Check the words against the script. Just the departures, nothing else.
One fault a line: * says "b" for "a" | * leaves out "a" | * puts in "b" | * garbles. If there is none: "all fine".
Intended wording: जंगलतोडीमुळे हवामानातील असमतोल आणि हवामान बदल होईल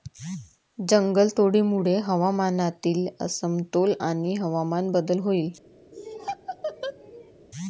all fine